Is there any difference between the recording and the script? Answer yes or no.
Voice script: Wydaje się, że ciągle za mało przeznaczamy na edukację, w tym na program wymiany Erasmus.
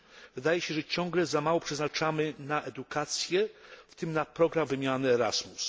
no